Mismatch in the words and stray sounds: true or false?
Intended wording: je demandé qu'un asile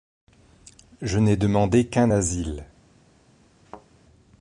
true